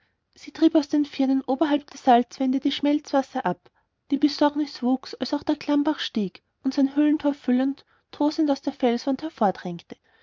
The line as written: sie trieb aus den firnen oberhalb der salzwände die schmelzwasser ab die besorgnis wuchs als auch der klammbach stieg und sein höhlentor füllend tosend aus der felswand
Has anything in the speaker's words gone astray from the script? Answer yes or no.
no